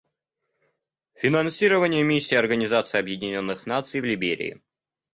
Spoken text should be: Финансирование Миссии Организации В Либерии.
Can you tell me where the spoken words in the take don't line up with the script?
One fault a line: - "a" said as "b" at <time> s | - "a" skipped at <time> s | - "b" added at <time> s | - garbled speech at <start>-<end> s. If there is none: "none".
- "Объединенных Наций" added at 3.0 s